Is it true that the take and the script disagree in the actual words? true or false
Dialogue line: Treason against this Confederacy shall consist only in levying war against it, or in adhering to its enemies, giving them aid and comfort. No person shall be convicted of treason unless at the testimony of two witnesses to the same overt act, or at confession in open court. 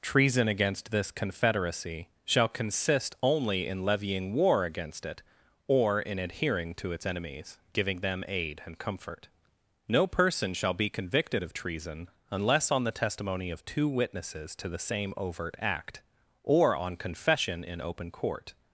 true